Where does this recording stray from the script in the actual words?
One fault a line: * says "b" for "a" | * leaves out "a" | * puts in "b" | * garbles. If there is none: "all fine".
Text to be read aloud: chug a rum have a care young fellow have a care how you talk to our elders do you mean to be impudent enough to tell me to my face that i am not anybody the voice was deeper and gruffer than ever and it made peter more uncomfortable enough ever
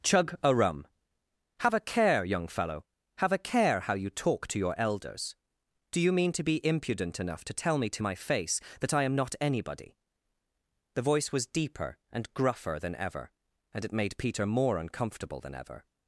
* says "your" for "our"
* says "than" for "enough"